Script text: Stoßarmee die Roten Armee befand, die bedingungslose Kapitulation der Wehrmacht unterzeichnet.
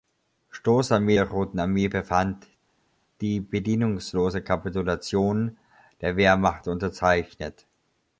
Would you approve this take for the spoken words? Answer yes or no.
no